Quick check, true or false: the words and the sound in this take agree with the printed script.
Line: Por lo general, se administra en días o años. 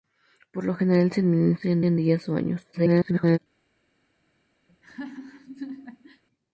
false